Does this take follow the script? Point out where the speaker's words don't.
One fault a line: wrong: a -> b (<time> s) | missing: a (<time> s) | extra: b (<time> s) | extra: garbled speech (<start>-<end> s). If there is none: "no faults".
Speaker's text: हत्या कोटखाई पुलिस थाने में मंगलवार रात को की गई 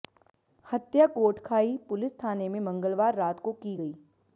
no faults